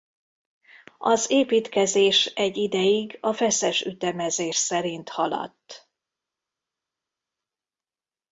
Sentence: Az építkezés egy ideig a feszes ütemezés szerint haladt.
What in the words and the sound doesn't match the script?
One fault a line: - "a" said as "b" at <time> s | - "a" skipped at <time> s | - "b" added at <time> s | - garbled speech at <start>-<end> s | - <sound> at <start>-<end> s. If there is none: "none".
none